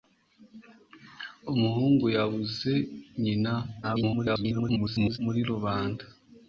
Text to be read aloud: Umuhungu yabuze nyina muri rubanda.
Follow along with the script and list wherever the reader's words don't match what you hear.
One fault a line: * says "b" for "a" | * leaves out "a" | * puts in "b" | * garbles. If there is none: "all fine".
* garbles